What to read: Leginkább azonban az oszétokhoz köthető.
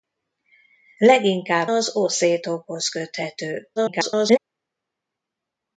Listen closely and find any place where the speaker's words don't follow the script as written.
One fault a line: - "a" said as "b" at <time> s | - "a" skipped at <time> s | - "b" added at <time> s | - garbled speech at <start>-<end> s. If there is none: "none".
- "azonban" skipped at 1.7 s
- garbled speech at 3.8-4.4 s